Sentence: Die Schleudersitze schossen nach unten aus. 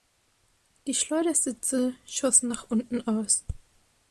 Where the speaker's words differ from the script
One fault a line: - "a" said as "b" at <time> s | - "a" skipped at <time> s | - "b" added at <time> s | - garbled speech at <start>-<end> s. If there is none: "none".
none